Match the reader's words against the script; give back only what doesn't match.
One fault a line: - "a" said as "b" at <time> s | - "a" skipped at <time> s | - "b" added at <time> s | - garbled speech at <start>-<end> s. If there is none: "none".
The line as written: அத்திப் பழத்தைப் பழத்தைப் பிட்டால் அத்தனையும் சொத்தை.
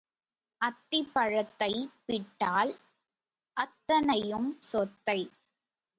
- "பழத்தைப்" skipped at 1.9 s